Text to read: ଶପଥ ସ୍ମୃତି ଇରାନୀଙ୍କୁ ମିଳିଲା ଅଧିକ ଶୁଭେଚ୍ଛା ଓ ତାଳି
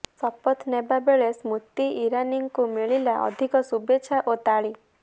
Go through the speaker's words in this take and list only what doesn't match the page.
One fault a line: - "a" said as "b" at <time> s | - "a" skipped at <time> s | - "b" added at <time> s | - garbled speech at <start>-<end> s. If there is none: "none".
- "ନେବା ବେଳେ" added at 0.7 s